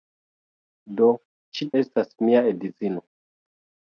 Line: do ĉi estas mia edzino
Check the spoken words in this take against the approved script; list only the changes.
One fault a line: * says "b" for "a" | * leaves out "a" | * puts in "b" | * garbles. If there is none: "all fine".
all fine